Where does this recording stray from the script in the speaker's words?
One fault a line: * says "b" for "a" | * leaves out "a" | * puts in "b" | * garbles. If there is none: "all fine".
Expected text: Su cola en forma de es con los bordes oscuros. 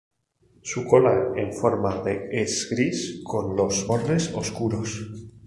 * puts in "gris"